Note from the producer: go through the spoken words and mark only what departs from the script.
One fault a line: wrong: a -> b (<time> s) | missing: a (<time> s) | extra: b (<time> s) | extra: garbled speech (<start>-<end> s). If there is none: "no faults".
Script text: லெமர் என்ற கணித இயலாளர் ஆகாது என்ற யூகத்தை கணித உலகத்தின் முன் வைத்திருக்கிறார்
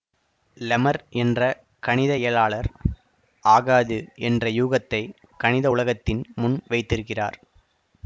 no faults